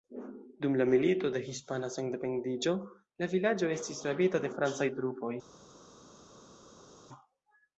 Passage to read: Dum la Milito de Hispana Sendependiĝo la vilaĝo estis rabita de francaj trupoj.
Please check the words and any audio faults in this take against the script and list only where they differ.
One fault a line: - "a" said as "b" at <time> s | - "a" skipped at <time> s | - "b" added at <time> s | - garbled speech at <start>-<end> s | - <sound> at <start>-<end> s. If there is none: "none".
none